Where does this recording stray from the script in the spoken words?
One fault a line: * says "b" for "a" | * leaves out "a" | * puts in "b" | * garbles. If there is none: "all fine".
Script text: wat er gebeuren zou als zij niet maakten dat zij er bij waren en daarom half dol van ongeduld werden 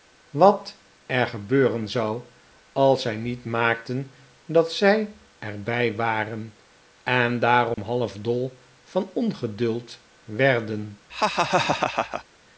all fine